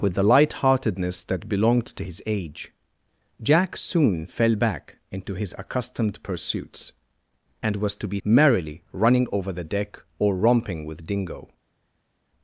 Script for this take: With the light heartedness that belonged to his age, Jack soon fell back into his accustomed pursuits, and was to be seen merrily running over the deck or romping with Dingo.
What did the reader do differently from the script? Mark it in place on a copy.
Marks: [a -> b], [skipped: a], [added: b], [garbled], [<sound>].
With the light heartedness that belonged to his age, Jack soon fell back into his accustomed pursuits, and was to be [skipped: seen] merrily running over the deck or romping with Dingo.